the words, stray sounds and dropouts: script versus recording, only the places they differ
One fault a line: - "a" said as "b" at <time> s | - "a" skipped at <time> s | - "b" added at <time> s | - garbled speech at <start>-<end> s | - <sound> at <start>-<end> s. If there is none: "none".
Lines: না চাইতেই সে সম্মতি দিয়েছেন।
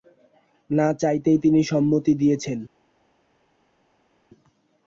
- "সে" said as "তিনি" at 1.4 s